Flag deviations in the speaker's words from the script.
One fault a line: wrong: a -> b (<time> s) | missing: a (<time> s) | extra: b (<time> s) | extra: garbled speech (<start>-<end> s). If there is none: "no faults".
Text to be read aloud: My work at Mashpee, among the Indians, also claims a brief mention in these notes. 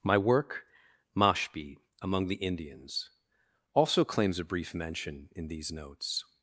missing: at (0.6 s)